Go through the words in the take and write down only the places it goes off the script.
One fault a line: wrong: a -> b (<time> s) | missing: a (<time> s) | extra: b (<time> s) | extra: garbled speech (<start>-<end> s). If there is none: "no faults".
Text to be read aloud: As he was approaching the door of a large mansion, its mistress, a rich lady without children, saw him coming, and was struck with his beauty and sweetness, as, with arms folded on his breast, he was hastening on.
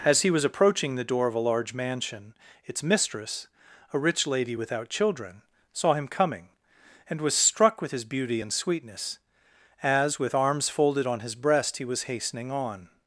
no faults